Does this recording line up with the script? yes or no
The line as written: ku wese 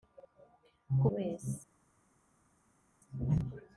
yes